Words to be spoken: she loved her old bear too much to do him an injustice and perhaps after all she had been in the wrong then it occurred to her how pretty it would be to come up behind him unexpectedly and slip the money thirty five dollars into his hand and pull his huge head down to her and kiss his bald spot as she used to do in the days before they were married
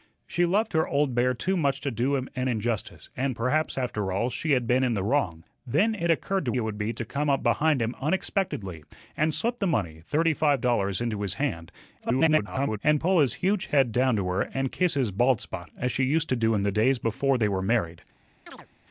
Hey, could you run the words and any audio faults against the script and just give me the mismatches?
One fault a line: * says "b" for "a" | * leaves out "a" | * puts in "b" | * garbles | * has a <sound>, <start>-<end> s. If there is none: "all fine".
* leaves out "her how pretty"
* garbles
* has a chirp, 18.5-18.7 s